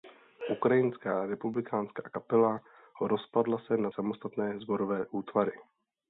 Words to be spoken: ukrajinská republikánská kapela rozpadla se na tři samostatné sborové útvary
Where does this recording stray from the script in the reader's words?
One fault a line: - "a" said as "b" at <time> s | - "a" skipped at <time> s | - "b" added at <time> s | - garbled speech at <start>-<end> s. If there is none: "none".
- "tři" skipped at 3.9 s